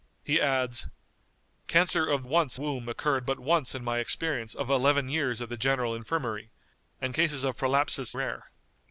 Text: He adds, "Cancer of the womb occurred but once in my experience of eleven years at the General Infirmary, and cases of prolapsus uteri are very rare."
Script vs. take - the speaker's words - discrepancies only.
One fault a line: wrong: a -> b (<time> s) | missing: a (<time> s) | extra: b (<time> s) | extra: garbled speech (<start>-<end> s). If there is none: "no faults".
wrong: the -> once (2.2 s)
missing: uteri are very (8.1 s)